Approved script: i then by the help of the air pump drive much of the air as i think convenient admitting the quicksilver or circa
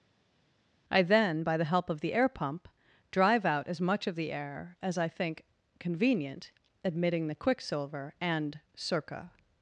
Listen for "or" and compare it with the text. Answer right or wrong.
wrong